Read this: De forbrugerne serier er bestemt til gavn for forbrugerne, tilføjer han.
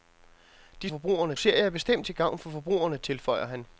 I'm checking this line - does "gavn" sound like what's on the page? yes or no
yes